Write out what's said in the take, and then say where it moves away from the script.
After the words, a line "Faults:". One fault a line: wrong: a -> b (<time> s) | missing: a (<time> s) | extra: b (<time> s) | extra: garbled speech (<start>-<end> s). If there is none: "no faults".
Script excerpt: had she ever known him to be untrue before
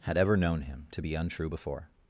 had ever known him to be untrue before
Faults:
missing: she (0.2 s)